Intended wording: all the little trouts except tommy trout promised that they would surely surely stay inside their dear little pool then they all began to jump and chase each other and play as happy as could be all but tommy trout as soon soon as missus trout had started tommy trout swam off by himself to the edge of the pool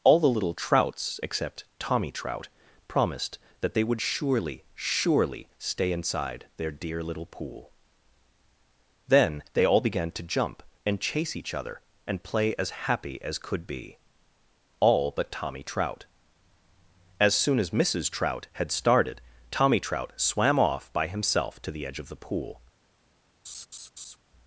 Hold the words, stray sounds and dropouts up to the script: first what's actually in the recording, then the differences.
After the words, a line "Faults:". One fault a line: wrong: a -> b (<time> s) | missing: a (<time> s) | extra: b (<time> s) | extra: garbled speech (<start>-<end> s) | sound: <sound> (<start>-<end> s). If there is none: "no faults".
all the little trouts except tommy trout promised that they would surely surely stay inside their dear little pool then they all began to jump and chase each other and play as happy as could be all but tommy trout as soon as missus trout had started tommy trout swam off by himself to the edge of the pool
Faults:
missing: soon (17.6 s)
sound: laugh (23.4-24.2 s)